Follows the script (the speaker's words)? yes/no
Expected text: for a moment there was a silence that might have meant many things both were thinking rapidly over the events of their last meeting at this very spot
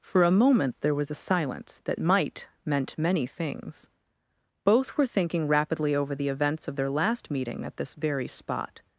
no